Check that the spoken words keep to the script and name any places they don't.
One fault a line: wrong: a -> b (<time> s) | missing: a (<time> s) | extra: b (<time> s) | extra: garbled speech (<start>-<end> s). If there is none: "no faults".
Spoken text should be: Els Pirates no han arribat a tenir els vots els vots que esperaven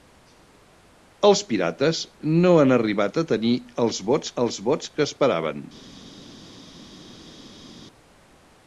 no faults